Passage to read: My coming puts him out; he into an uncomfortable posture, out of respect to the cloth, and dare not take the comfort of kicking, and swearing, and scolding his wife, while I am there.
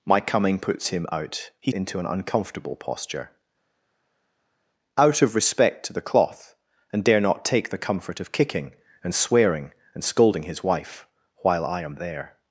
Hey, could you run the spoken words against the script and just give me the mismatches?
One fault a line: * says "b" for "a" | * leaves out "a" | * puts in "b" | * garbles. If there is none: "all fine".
all fine